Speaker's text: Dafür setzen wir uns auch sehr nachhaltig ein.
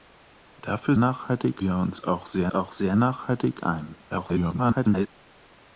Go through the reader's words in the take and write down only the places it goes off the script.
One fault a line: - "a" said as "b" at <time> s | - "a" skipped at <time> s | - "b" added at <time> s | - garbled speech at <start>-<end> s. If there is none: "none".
- "setzen" said as "nachhaltig" at 1.0 s
- "auch sehr" added at 2.5 s
- garbled speech at 4.1-5.1 s